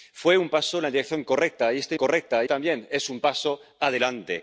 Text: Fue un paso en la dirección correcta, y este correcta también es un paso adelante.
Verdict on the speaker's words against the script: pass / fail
pass